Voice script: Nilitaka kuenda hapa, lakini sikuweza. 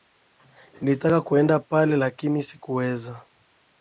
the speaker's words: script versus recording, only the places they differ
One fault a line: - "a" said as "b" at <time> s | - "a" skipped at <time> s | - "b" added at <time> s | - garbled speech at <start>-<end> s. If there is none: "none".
- "hapa" said as "pale" at 1.6 s